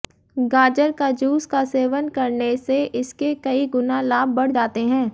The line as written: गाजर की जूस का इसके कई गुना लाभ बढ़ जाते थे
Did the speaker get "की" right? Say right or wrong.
wrong